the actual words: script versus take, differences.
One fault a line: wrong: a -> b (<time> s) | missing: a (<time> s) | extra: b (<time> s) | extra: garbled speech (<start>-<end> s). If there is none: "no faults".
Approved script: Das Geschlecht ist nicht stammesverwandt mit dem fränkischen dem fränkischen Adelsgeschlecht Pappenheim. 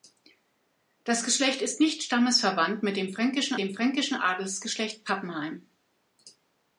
no faults